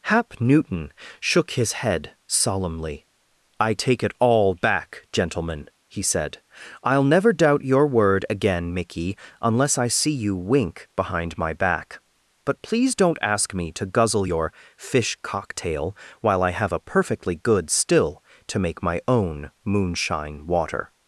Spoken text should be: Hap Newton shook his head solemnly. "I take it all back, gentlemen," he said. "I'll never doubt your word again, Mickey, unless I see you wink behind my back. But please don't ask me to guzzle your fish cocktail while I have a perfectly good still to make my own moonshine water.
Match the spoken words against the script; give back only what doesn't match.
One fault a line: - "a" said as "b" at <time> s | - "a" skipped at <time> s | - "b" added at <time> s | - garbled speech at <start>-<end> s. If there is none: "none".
none